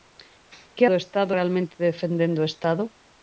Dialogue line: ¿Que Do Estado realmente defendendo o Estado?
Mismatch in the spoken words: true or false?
false